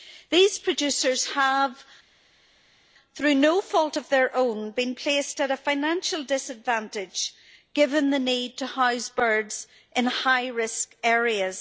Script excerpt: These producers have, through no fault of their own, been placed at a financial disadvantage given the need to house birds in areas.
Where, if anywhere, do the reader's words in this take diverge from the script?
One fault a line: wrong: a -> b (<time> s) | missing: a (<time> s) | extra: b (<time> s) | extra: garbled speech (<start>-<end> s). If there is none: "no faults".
extra: high risk (10.1 s)